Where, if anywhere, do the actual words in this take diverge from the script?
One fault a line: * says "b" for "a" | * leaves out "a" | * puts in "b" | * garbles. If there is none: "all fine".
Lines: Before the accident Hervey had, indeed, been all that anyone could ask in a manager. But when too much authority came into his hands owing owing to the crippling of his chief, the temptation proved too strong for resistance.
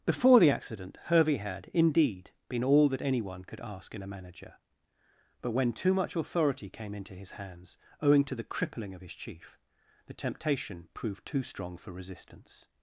* leaves out "owing"